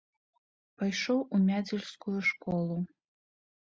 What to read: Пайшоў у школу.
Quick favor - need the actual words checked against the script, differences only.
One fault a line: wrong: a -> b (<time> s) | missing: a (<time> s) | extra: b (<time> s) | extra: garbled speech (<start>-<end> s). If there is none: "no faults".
extra: мядзельскую (1.5 s)